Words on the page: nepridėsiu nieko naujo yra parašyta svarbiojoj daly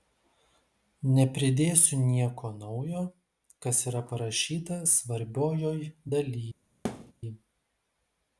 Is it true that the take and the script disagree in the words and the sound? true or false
true